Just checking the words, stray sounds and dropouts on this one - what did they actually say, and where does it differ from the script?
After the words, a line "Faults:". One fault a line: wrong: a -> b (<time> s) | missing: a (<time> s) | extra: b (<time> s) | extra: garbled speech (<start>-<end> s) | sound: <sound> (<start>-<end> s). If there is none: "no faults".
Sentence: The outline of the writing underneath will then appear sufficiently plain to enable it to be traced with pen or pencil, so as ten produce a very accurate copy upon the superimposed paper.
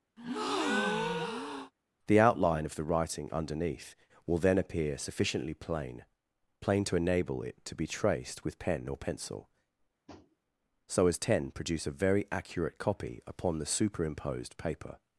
The outline of the writing underneath will then appear sufficiently plain plain to enable it to be traced with pen or pencil, so as ten produce a very accurate copy upon the superimposed paper.
Faults:
sound: breath (0.2-1.7 s)
extra: plain (6.6 s)
sound: tap (10.1-10.4 s)